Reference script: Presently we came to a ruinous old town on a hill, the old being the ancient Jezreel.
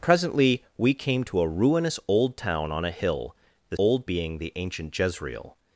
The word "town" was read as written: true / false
true